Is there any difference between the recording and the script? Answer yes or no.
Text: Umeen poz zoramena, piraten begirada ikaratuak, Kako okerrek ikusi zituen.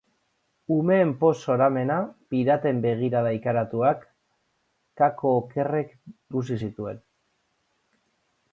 no